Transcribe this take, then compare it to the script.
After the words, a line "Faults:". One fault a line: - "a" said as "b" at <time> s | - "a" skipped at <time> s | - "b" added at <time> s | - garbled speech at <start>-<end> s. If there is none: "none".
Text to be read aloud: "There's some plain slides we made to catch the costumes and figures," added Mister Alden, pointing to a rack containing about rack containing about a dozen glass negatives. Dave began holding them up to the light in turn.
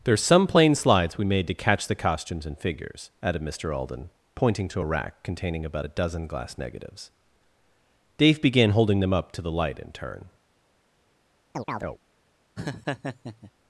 "There's some plain slides we made to catch the costumes and figures," added Mister Alden, pointing to a rack containing about a dozen glass negatives. Dave began holding them up to the light in turn.
Faults:
- "rack containing about" skipped at 5.9 s